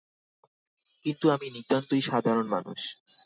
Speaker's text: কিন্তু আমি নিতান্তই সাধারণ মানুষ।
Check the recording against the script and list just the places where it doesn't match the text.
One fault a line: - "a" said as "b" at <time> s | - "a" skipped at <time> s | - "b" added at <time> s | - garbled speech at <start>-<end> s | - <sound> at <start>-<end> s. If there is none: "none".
none